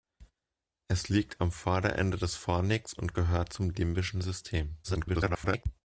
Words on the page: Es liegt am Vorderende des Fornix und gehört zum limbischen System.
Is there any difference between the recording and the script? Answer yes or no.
yes